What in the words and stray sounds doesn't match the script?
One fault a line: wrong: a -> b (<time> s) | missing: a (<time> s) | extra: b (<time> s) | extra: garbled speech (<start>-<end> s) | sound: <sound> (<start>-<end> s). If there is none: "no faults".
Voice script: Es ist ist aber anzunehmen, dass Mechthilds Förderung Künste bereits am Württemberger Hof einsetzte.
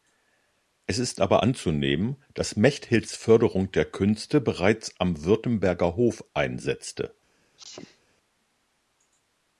missing: ist (1.2 s)
extra: der (3.7 s)
sound: sneeze (7.6-8.0 s)